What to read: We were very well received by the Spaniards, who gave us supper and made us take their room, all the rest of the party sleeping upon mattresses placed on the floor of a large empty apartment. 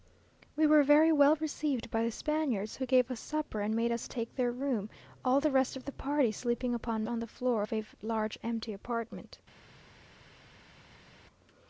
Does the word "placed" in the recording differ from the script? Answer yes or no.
yes